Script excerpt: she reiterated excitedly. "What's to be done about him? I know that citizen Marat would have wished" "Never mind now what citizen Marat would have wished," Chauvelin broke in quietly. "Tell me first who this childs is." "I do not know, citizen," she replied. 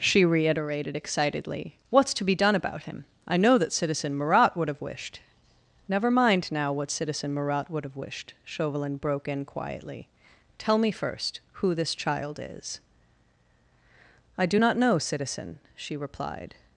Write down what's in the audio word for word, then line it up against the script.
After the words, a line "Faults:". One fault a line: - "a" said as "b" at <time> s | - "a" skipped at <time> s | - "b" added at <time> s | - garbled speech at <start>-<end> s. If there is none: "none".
she reiterated excitedly. "What's to be done about him? I know that citizen Marat would have wished" "Never mind now what citizen Marat would have wished," Chauvelin broke in quietly. "Tell me first who this child is." "I do not know, citizen," she replied.
Faults:
- "childs" said as "child" at 12.0 s